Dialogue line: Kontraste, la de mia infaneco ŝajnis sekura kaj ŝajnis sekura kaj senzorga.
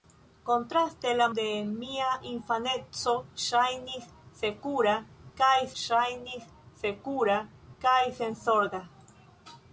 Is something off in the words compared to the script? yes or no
no